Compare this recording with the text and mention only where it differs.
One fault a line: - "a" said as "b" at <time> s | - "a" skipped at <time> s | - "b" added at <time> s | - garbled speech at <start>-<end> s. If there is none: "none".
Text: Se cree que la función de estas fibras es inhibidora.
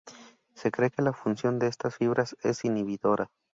none